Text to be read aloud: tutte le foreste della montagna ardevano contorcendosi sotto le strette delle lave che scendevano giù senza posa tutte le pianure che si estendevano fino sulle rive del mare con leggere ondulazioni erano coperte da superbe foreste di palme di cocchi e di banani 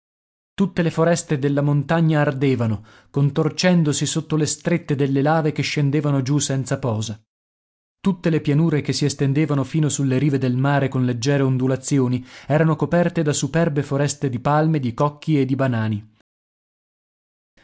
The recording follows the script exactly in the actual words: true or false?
true